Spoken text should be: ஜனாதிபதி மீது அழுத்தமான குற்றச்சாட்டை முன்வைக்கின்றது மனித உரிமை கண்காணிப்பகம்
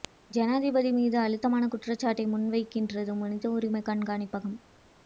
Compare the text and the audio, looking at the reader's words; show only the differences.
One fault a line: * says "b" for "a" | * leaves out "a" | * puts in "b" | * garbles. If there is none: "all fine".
all fine